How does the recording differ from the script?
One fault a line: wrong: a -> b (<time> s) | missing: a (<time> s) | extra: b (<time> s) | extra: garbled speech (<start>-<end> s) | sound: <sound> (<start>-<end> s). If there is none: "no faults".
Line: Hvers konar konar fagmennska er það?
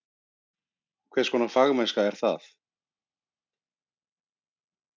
missing: konar (1.5 s)